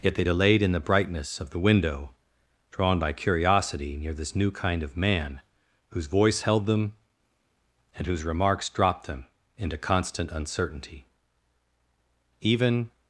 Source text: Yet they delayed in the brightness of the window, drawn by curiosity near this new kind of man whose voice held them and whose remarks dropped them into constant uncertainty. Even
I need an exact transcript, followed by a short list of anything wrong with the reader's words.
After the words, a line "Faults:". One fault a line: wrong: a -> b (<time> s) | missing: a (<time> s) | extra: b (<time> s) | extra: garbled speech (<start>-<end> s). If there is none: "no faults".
Yet they delayed in the brightness of the window, drawn by curiosity near this new kind of man whose voice held them and whose remarks dropped them into constant uncertainty. Even
Faults:
no faults